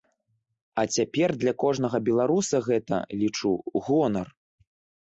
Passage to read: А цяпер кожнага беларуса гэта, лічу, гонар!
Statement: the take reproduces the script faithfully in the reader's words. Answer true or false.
false